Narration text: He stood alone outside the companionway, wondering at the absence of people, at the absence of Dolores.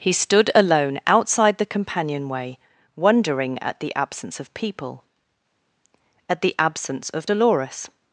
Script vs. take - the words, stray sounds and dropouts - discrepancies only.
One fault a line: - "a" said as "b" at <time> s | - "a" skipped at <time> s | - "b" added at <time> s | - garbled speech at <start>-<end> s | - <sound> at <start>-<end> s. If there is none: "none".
none